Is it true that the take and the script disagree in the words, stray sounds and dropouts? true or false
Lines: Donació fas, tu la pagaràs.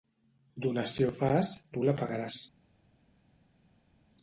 false